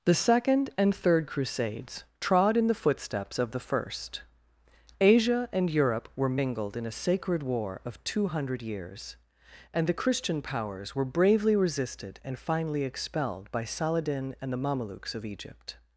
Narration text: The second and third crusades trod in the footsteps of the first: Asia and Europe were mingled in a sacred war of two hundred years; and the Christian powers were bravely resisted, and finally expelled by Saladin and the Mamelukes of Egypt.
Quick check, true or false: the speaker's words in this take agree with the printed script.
true